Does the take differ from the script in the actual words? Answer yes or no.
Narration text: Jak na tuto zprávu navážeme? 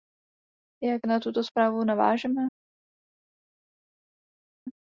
no